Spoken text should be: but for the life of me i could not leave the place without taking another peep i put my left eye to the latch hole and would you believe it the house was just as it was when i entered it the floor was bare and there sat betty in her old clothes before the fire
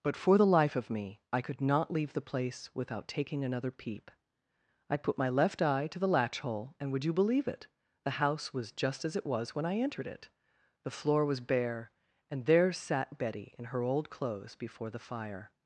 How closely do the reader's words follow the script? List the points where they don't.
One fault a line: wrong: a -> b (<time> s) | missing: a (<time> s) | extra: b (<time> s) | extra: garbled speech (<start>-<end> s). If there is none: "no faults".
no faults